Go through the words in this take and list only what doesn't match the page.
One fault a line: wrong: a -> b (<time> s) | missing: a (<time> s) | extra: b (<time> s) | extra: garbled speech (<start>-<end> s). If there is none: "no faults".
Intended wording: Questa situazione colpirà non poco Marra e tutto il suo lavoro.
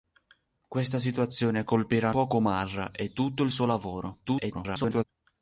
missing: non (2.1 s)
extra: garbled speech (4.2-5.0 s)